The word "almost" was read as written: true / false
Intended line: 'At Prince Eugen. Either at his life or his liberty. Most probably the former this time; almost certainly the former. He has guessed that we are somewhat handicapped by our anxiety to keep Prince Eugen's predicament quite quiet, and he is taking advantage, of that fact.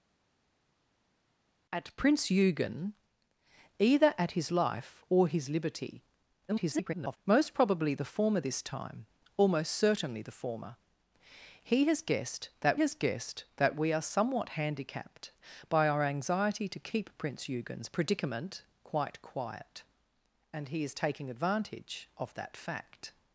true